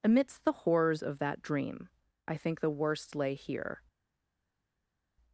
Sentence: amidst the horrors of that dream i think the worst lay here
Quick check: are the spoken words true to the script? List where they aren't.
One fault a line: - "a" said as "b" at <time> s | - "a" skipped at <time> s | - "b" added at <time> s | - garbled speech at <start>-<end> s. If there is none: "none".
none